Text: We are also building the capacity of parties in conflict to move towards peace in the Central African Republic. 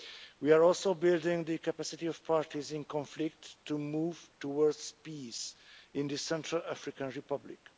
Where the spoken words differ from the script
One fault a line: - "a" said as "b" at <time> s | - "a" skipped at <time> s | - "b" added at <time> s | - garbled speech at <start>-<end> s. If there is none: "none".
none